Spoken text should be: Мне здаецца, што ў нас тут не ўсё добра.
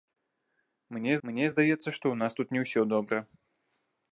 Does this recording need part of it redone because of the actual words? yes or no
yes